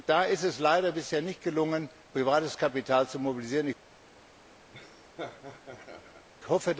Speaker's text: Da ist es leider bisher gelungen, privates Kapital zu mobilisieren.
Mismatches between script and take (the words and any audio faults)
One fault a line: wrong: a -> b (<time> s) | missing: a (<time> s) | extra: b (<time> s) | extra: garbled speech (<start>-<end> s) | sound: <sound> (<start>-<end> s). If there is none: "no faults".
extra: nicht (1.2 s)
sound: laugh (4.7-6.3 s)